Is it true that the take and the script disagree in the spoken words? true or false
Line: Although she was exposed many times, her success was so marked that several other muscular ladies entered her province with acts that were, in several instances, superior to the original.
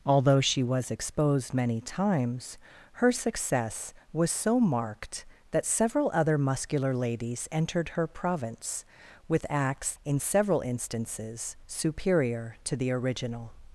true